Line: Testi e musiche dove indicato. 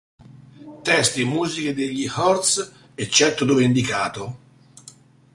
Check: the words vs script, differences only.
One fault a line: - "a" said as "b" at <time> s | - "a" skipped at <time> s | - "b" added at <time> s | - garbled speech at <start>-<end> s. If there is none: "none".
- "degli Hurts eccetto" added at 1.8 s